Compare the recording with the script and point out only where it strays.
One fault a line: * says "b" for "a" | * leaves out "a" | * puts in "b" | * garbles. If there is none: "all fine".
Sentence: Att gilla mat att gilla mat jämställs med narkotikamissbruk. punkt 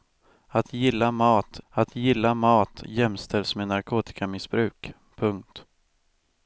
all fine